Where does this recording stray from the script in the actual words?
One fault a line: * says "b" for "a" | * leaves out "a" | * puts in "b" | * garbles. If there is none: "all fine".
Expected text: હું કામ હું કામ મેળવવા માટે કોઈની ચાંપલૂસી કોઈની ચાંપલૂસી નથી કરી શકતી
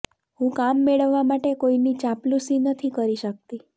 * leaves out "હું કામ"
* leaves out "કોઈની ચાંપલૂસી"